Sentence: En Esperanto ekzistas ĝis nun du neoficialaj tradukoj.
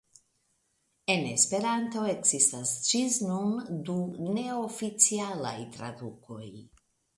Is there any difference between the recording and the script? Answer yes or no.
no